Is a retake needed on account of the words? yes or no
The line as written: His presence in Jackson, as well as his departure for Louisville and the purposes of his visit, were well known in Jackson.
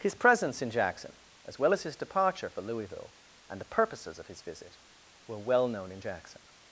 no